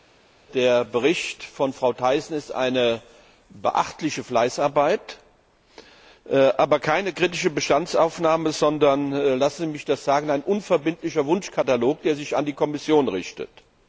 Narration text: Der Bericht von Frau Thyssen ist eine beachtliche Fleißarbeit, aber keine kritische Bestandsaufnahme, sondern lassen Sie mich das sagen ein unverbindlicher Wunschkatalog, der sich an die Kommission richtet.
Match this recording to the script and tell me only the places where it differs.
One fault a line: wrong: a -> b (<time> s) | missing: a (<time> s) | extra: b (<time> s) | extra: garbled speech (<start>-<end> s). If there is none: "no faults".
no faults